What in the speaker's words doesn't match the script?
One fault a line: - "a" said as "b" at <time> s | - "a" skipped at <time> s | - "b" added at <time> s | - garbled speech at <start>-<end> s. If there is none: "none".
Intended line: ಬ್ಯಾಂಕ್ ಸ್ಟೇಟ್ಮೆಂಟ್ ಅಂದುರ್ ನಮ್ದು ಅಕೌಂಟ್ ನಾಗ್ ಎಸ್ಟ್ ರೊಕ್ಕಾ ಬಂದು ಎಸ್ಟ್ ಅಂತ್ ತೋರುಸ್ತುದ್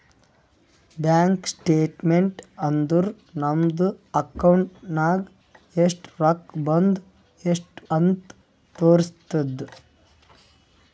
none